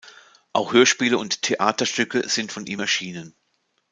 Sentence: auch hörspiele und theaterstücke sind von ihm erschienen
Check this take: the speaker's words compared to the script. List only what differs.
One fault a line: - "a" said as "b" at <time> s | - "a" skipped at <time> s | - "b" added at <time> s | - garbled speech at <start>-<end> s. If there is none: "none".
none